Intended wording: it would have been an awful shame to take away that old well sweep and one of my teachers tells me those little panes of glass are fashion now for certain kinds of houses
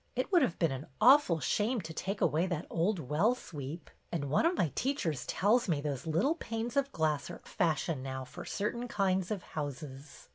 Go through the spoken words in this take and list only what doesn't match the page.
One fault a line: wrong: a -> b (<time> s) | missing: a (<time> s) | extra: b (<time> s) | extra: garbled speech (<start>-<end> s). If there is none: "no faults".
no faults